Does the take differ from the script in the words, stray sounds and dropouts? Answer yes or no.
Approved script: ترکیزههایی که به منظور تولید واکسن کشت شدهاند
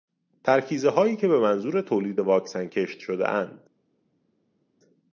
no